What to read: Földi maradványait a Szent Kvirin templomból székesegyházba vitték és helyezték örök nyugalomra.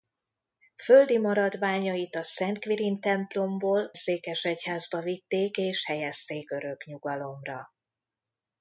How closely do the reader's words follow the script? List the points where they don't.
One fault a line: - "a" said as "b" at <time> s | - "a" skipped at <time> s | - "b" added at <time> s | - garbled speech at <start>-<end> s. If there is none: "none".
none